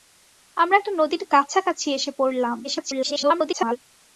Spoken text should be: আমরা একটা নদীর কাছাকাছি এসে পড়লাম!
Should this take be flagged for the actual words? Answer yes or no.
yes